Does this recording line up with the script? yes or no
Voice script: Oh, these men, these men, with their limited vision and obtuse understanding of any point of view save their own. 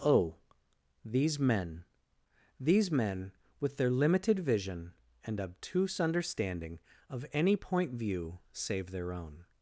no